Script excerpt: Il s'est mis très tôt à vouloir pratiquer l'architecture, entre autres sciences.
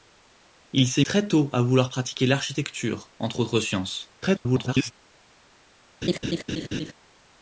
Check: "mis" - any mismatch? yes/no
yes